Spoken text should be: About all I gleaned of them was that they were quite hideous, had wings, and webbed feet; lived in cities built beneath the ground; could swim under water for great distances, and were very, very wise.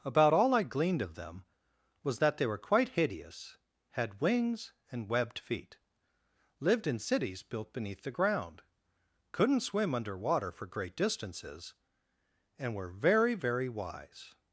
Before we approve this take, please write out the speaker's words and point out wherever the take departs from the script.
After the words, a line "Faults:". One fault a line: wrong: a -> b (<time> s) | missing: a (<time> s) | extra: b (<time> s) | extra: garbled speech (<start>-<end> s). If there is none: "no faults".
About all I gleaned of them was that they were quite hideous, had wings, and webbed feet; lived in cities built beneath the ground; couldn't swim under water for great distances, and were very, very wise.
Faults:
wrong: could -> couldn't (9.3 s)